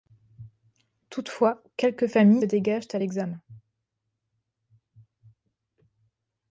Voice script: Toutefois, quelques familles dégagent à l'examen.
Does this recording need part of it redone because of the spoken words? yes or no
no